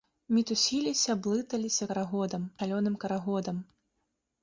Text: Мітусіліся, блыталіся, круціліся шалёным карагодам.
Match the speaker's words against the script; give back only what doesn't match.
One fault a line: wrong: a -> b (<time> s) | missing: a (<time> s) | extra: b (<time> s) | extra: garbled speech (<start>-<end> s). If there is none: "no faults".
wrong: круціліся -> карагодам (1.9 s)